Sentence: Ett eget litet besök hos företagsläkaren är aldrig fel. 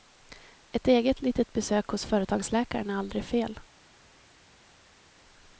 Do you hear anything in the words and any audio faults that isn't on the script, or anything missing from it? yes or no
no